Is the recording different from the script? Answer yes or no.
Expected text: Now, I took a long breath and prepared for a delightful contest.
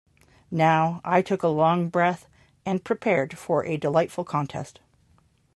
no